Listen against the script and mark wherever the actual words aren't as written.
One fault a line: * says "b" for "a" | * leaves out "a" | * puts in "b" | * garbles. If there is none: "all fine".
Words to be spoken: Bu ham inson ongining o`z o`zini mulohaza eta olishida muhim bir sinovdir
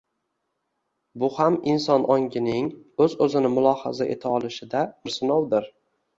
* leaves out "muhim"